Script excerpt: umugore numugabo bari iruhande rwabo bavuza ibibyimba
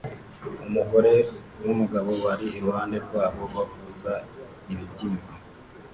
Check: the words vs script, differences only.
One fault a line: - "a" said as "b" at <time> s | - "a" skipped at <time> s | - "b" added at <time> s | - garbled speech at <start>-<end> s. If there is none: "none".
none